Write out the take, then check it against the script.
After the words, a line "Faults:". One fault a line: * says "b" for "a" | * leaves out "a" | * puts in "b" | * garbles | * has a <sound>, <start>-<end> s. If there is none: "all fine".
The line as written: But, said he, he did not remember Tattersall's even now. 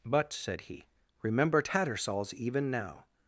But, said he, remember Tattersall's even now.
Faults:
* leaves out "he did not"